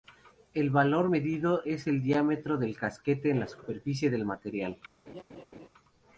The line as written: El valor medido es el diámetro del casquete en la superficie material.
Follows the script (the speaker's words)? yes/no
no